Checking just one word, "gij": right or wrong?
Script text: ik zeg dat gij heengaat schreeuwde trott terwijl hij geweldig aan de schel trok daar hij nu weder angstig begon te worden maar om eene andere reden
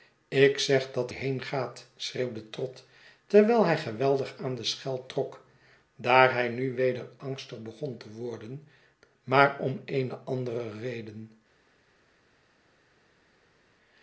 wrong